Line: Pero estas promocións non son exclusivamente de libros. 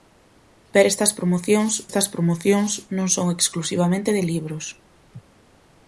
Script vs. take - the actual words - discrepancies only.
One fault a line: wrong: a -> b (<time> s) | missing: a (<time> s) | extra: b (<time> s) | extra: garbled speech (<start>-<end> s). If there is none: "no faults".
extra: estas promocións (1.9 s)